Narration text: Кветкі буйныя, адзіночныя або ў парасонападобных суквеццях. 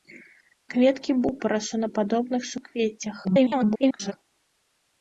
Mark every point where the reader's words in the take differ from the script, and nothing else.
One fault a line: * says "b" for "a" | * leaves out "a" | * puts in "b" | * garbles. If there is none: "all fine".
* leaves out "буйныя адзіночныя або"
* garbles